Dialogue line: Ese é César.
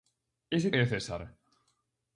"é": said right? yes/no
yes